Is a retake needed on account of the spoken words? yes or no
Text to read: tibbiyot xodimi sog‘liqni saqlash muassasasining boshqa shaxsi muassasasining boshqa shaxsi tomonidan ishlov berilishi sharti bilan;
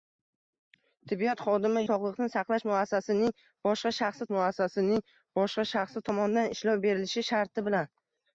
no